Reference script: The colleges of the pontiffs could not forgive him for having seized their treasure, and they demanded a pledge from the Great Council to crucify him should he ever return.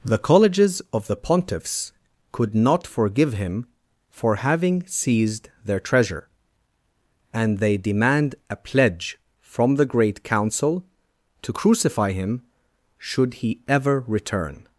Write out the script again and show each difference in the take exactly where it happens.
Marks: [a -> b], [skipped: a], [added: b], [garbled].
The colleges of the pontiffs could not forgive him for having seized their treasure, and they [demanded -> demand] a pledge from the Great Council to crucify him should he ever return.